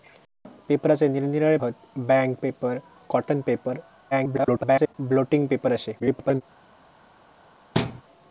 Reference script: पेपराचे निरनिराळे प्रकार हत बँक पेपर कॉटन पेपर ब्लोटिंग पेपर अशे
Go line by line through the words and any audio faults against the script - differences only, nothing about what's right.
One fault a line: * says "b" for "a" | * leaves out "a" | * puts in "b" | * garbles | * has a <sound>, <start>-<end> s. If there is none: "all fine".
* leaves out "प्रकार"
* garbles
* garbles
* has a thud, 7.7-8.0 s